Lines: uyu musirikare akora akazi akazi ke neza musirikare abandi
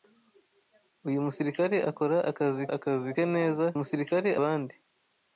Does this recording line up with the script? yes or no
yes